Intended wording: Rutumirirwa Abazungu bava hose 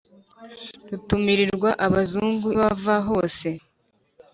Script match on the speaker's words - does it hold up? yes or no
yes